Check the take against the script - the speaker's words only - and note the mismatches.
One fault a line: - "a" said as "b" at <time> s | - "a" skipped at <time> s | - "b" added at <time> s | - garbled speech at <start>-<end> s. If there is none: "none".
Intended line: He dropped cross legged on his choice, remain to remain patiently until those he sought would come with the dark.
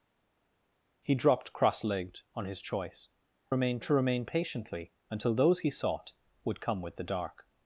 none